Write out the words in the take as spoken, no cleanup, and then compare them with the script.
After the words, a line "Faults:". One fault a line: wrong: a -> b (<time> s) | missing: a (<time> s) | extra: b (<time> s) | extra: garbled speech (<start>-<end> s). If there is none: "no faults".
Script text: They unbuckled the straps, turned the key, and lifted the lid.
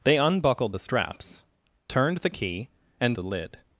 They unbuckled the straps, turned the key, and the lid.
Faults:
missing: lifted (3.2 s)